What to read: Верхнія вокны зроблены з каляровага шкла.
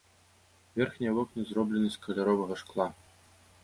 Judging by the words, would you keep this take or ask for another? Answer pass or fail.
pass